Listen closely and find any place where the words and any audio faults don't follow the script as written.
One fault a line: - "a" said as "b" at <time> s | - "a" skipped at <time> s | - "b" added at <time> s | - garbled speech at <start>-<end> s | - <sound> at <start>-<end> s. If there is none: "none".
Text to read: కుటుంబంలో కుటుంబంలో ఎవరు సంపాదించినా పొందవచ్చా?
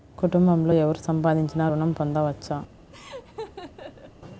- "కుటుంబంలో" skipped at 0.7 s
- "ఋణం" added at 1.7 s
- laugh at 2.9-4.1 s